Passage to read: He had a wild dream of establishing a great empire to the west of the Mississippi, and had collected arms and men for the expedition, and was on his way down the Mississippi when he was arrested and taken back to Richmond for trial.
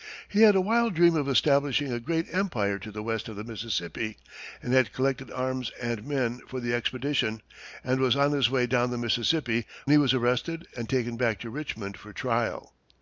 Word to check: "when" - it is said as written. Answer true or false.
false